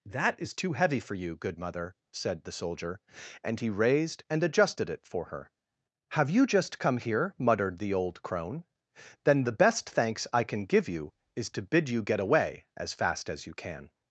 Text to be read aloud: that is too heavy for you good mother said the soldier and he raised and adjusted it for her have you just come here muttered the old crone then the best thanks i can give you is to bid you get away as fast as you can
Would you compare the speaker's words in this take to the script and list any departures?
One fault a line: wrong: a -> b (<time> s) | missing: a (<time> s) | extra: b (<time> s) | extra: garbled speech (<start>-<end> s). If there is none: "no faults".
no faults